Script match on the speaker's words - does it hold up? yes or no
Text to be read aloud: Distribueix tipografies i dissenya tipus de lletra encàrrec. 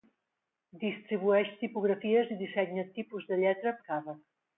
yes